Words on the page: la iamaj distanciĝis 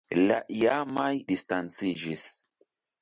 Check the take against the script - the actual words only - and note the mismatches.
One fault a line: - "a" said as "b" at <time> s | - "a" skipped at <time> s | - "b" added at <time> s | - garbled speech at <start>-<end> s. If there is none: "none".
none